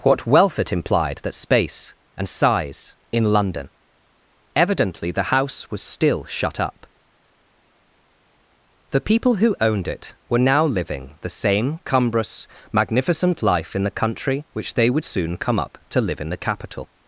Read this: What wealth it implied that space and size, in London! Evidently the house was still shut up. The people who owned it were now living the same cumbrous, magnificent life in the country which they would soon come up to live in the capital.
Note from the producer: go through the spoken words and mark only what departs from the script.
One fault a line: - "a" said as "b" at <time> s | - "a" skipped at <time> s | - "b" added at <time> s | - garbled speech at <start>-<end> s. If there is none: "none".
none